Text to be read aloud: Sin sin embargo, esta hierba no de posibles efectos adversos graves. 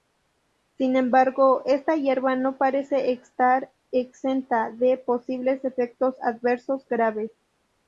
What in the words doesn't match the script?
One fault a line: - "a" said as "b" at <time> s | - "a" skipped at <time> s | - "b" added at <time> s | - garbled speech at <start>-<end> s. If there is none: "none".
- "sin" skipped at 0.9 s
- "parece estar exenta" added at 2.6 s